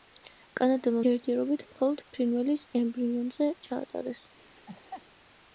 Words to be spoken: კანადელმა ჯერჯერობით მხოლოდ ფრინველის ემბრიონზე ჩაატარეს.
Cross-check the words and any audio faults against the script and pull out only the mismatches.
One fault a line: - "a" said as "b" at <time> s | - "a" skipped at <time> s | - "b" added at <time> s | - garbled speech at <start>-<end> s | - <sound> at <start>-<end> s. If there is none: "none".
- laugh at 4.4-5.1 s